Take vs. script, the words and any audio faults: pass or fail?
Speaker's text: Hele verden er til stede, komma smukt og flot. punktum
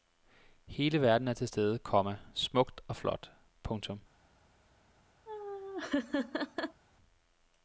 fail